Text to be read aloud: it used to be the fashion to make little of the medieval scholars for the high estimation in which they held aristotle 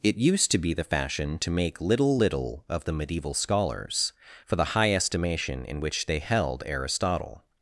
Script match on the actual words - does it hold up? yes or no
no